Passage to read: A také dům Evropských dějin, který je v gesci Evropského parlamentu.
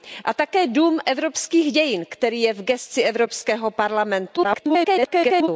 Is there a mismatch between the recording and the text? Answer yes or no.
yes